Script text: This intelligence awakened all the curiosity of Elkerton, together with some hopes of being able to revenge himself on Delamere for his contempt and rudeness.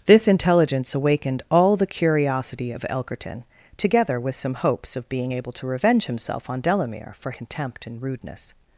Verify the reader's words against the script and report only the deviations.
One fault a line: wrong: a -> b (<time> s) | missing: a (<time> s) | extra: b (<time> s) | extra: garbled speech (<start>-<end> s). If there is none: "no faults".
missing: his (7.3 s)